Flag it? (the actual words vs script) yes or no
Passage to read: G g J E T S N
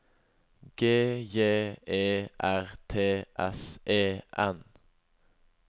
yes